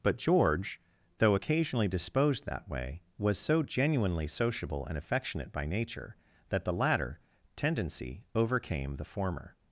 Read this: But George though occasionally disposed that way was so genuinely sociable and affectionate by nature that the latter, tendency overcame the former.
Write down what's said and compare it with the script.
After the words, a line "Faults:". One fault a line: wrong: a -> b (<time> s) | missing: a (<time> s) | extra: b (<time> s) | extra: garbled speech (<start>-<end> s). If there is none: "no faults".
But George though occasionally disposed that way was so genuinely sociable and affectionate by nature that the latter, tendency overcame the former.
Faults:
no faults